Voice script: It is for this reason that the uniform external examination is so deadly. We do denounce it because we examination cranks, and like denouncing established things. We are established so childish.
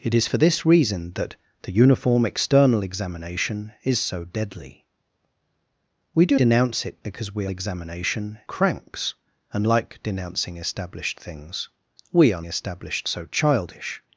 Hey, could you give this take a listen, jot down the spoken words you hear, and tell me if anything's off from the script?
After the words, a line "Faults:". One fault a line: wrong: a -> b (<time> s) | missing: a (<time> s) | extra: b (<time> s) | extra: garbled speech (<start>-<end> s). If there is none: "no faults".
It is for this reason that the uniform external examination is so deadly. We do denounce it because we examination cranks, and like denouncing established things. We are established so childish.
Faults:
no faults